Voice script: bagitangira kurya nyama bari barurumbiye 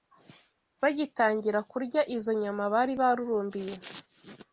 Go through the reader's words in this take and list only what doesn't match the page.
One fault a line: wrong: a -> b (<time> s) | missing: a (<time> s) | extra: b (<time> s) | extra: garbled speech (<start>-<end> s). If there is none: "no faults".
extra: izo (2.1 s)